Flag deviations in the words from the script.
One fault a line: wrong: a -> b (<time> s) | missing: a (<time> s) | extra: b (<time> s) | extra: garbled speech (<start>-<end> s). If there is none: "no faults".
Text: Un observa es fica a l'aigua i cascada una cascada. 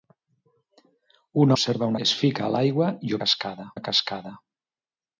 no faults